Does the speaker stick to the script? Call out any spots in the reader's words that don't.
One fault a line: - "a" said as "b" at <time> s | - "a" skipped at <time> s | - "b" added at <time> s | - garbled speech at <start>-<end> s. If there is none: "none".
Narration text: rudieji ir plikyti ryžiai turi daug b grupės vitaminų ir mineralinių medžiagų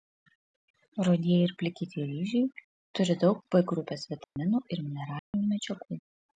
none